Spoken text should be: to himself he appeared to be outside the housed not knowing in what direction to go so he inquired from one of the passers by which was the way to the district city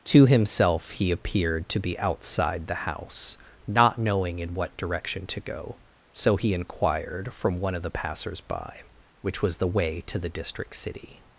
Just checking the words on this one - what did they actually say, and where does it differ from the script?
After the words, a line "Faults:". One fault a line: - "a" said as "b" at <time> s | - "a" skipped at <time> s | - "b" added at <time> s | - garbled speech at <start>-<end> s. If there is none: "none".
to himself he appeared to be outside the house not knowing in what direction to go so he inquired from one of the passers by which was the way to the district city
Faults:
- "housed" said as "house" at 2.8 s